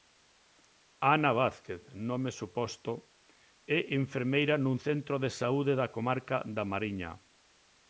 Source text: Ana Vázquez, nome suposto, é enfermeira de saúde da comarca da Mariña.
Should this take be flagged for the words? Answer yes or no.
yes